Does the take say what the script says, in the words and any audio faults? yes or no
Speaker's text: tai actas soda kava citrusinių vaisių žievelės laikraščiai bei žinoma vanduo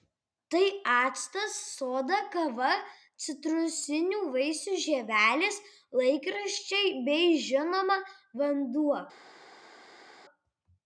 yes